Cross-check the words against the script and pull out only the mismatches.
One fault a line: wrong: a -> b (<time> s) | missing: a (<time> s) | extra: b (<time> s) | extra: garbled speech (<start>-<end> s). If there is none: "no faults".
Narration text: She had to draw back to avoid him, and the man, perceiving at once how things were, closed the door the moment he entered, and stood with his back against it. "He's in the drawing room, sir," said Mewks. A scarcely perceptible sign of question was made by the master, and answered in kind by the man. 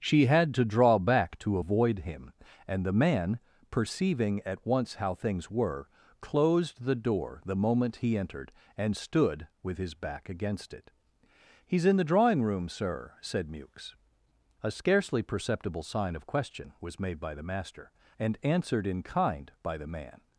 no faults